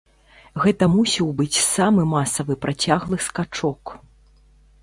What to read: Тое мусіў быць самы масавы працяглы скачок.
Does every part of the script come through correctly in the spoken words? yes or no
no